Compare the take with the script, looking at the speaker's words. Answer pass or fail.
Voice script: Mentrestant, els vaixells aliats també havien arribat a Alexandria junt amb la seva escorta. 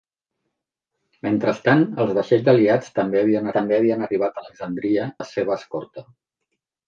fail